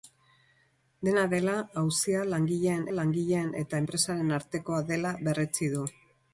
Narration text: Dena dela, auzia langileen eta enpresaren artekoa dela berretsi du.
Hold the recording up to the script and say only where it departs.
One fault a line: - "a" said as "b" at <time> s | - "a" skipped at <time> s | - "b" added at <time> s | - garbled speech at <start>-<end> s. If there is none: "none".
- "langileen" added at 3.0 s